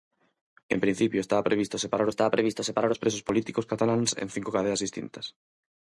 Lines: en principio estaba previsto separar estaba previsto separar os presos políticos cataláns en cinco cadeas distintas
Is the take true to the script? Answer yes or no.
yes